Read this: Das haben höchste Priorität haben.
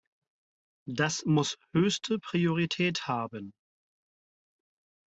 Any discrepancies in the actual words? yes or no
yes